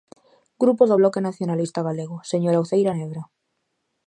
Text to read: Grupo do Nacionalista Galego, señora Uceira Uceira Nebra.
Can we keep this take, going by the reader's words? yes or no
no